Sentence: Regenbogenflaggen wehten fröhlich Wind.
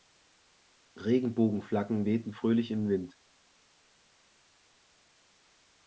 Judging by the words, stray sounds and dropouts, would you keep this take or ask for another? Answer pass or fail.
fail